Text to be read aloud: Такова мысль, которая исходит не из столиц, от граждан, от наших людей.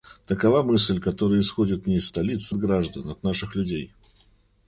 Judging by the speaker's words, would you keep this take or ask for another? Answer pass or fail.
pass